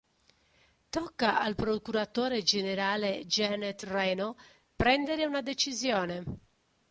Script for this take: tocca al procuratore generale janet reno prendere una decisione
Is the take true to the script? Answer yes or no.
yes